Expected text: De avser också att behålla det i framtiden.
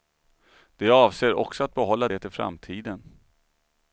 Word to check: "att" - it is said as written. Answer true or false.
true